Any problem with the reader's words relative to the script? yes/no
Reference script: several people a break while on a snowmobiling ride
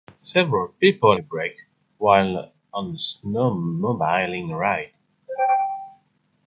no